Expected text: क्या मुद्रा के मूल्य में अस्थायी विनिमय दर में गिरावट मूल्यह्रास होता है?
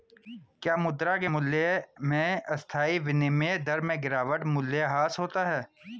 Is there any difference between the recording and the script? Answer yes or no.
no